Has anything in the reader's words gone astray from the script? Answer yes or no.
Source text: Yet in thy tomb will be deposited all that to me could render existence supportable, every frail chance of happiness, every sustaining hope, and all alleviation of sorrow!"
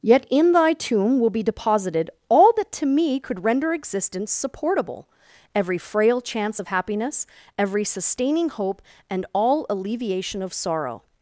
no